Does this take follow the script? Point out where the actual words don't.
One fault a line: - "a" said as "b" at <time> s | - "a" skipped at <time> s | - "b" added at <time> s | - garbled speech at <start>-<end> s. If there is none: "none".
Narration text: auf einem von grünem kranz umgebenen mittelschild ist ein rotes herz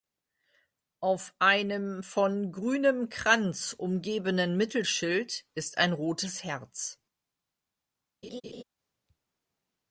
none